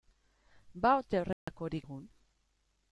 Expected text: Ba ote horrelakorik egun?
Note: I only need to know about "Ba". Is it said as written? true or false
true